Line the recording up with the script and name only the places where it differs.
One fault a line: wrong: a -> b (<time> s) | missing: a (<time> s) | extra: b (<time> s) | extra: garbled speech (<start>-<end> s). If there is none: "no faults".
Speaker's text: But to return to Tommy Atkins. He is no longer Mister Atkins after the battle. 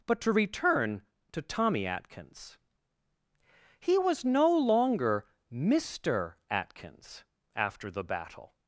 wrong: is -> was (4.0 s)